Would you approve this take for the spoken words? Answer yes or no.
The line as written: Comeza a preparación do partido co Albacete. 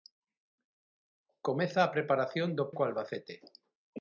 no